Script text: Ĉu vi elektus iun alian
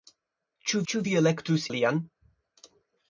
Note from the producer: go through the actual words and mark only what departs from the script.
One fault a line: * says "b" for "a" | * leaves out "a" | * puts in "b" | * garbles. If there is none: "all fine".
* puts in "ĉu"
* leaves out "iun"